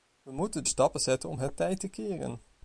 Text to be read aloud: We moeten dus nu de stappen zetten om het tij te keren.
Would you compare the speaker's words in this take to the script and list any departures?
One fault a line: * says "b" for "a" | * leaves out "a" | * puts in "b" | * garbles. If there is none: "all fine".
* leaves out "dus nu de"